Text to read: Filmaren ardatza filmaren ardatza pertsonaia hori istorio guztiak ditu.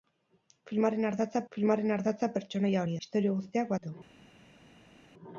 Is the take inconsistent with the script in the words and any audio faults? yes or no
no